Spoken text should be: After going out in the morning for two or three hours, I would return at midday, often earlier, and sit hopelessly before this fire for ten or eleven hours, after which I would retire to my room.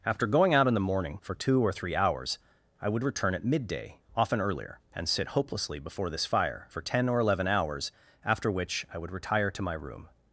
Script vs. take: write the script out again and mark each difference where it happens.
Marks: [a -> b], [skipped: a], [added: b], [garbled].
After going out in the morning for two or three hours, I would return at midday, often earlier, and sit hopelessly before this fire for ten or eleven hours, after which I would retire to my room.